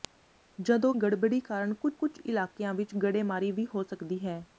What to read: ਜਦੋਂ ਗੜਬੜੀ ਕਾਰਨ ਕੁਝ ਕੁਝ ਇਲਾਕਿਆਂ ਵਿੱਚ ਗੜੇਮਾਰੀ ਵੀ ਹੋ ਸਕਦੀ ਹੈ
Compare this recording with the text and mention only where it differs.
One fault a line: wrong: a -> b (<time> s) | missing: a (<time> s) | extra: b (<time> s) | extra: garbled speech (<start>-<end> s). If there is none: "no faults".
no faults